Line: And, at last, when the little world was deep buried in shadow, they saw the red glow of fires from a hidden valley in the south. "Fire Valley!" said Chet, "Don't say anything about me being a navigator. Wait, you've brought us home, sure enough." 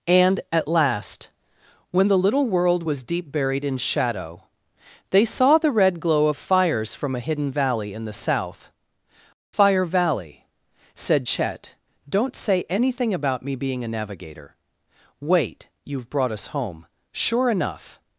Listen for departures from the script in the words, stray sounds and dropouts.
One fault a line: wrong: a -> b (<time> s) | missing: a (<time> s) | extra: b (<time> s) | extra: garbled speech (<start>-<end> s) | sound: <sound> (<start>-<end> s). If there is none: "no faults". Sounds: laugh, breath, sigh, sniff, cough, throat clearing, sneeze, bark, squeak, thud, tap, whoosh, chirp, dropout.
no faults